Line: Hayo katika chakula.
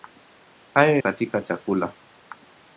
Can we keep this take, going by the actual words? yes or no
yes